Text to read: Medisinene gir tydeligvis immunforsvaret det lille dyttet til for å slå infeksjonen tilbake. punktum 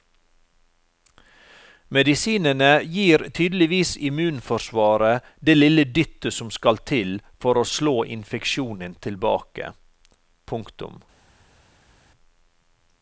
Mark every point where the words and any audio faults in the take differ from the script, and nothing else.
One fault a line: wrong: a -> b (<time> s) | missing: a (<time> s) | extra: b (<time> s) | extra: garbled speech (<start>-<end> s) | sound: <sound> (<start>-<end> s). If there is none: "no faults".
extra: som skal (6.4 s)